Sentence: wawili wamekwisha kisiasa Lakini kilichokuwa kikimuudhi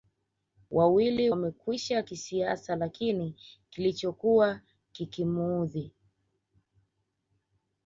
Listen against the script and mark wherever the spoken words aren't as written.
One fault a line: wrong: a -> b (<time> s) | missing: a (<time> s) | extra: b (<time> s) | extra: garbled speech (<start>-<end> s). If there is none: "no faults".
no faults